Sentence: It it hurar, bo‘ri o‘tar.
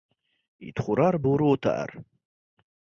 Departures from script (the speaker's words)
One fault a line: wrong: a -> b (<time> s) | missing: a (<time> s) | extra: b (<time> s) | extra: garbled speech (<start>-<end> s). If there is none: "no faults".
missing: it (0.8 s)